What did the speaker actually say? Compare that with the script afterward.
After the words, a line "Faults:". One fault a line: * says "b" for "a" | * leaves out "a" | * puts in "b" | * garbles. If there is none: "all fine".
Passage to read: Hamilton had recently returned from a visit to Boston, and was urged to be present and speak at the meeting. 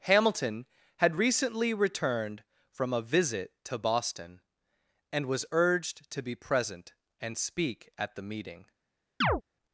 Hamilton had recently returned from a visit to Boston, and was urged to be present and speak at the meeting.
Faults:
all fine